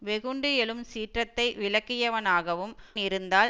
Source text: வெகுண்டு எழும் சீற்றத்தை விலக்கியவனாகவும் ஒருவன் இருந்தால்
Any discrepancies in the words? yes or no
yes